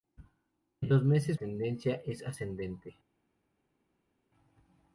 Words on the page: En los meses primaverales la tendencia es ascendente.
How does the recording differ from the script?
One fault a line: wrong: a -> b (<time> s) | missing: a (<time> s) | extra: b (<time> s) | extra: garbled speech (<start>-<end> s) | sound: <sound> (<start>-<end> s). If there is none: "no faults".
missing: primaverales la (1.4 s)